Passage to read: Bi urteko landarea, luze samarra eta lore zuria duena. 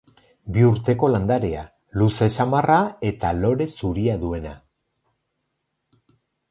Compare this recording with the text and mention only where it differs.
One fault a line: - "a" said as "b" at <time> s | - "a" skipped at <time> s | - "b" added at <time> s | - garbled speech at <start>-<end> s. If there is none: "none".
none